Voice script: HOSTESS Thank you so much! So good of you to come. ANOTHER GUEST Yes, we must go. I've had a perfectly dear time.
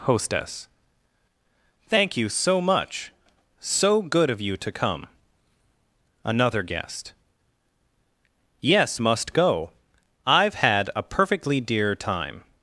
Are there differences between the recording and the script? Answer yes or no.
yes